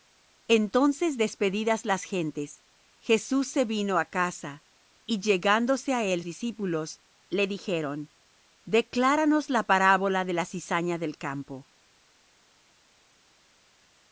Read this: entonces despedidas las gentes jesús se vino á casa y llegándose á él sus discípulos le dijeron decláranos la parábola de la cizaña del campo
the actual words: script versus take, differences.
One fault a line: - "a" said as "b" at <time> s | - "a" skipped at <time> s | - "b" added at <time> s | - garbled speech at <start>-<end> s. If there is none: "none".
- "sus" skipped at 6.2 s